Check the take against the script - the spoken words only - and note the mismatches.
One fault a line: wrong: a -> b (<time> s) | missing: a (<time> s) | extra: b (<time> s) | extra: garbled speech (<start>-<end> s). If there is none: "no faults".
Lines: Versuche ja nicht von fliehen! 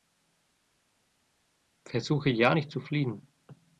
wrong: von -> zu (2.7 s)